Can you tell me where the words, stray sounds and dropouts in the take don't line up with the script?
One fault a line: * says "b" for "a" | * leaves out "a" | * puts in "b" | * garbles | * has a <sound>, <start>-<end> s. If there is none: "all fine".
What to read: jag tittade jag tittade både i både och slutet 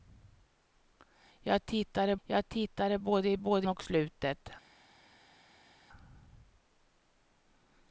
all fine